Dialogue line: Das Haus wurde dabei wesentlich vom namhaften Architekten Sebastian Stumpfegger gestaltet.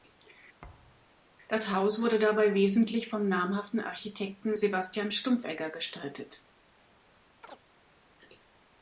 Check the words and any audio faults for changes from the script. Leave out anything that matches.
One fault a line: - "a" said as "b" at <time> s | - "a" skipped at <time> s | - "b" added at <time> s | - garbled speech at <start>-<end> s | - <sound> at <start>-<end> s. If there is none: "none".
- thud at 0.6-1.1 s
- chirp at 7.4-7.6 s